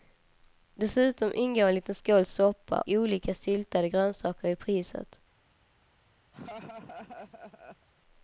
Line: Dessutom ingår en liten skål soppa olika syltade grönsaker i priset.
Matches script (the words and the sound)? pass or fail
fail